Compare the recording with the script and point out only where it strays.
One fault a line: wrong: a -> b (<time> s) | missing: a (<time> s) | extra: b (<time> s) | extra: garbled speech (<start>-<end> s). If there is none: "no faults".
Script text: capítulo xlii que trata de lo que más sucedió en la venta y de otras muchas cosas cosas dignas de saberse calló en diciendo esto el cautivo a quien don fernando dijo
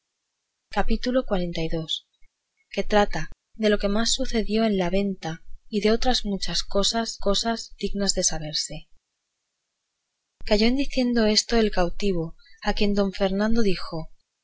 no faults